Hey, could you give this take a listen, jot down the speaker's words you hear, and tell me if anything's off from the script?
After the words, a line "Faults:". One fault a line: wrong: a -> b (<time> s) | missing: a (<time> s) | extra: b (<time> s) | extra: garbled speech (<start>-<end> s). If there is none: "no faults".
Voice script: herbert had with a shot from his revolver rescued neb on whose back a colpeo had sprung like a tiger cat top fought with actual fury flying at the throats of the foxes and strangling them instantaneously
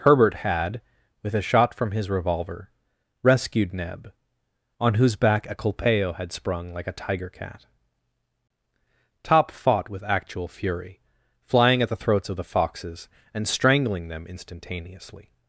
herbert had with a shot from his revolver rescued neb on whose back a colpeo had sprung like a tiger cat top fought with actual fury flying at the throats of the foxes and strangling them instantaneously
Faults:
no faults